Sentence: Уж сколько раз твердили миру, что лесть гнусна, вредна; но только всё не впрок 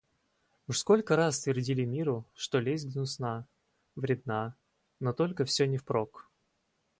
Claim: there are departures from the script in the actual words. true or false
false